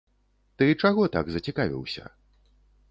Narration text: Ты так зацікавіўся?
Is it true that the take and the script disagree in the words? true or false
true